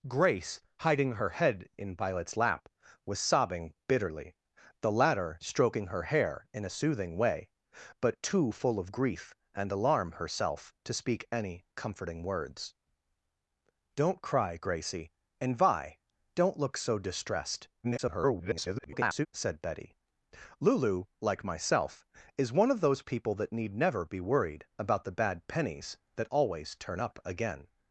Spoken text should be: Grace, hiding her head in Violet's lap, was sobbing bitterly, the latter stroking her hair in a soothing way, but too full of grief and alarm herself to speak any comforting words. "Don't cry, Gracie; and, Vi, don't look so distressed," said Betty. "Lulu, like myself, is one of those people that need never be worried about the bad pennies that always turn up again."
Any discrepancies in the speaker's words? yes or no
yes